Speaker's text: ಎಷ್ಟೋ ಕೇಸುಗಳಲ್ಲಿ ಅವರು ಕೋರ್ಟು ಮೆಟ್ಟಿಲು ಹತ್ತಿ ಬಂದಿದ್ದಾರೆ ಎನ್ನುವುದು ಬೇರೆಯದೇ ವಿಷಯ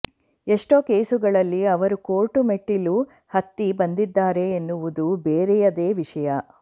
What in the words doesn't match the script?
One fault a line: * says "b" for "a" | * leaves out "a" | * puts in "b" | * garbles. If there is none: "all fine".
all fine